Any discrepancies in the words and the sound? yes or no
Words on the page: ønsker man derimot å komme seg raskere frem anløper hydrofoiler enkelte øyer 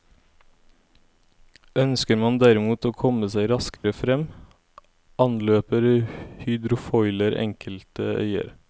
yes